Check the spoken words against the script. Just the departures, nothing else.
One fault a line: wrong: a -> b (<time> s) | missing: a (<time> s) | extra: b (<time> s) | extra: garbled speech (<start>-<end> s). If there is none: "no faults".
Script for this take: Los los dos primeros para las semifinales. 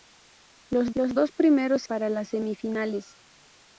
no faults